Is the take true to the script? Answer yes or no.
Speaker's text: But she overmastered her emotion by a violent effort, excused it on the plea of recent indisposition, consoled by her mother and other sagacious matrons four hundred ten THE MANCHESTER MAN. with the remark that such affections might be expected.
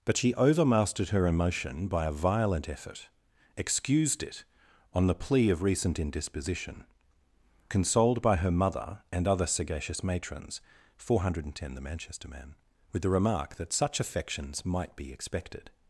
yes